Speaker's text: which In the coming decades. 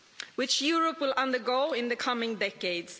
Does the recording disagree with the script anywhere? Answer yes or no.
yes